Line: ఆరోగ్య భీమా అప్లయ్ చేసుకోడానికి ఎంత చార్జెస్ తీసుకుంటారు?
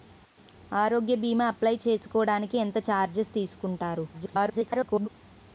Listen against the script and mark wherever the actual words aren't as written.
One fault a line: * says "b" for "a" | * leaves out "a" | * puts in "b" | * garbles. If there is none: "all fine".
* garbles